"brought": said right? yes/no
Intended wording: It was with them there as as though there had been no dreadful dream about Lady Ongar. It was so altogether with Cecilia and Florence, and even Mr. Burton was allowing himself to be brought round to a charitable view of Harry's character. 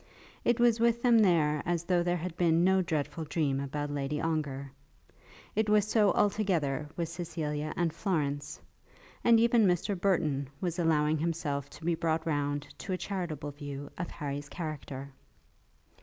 yes